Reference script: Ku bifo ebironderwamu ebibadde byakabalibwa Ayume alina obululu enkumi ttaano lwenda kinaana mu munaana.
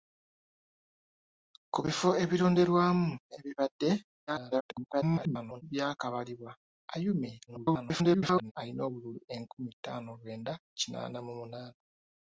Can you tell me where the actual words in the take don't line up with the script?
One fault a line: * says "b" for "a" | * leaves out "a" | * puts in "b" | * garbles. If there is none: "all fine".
* garbles
* garbles